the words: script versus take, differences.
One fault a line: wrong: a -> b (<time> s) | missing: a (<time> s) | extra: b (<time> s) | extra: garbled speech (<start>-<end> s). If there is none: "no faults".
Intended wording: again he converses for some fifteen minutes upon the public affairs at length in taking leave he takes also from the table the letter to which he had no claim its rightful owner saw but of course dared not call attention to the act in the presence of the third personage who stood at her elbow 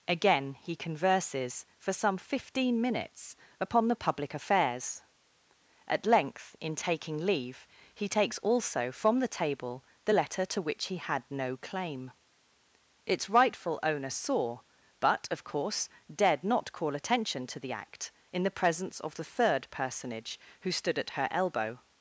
no faults